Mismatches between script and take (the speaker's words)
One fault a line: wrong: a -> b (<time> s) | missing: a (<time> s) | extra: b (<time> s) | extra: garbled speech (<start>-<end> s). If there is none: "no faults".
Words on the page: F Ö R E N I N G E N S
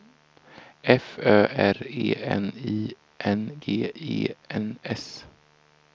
no faults